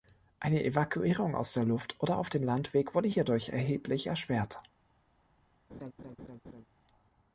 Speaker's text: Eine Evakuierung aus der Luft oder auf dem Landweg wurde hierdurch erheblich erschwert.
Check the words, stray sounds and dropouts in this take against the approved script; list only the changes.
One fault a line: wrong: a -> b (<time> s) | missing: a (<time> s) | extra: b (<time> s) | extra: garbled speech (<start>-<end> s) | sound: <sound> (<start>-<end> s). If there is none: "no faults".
sound: laugh (5.7-6.6 s)